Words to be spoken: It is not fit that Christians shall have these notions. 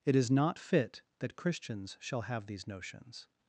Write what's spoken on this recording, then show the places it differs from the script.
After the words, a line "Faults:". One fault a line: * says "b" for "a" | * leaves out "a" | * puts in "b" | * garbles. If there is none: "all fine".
It is not fit that Christians shall have these notions.
Faults:
all fine